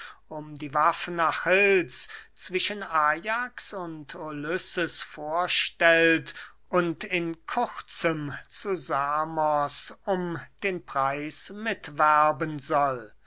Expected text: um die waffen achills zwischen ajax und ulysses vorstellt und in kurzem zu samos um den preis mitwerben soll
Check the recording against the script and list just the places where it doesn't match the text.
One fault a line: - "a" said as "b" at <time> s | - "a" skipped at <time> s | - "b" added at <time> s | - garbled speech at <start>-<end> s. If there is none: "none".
none